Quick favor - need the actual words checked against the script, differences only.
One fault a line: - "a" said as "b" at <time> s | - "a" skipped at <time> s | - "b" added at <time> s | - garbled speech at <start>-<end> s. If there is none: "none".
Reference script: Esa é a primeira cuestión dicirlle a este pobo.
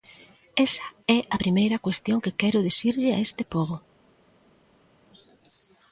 - "que quero" added at 2.2 s